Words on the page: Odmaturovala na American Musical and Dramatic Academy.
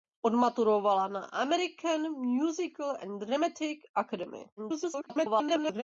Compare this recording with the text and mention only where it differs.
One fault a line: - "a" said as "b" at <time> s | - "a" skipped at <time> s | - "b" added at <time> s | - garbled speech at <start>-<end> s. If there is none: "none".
- garbled speech at 4.6-5.8 s